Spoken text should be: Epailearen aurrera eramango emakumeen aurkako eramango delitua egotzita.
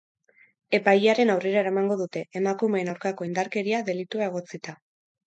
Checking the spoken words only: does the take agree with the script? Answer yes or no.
no